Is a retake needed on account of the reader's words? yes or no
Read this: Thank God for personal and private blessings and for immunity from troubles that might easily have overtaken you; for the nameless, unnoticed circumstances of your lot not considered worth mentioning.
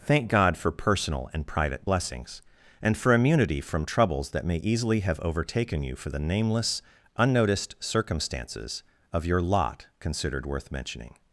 yes